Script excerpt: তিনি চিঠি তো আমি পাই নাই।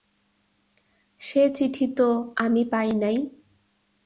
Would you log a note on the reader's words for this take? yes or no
yes